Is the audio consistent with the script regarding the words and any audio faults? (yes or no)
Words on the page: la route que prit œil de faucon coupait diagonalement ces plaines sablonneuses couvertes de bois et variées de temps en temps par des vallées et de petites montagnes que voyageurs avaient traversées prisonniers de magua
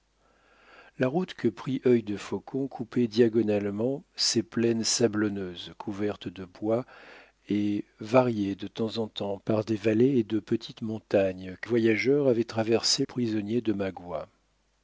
yes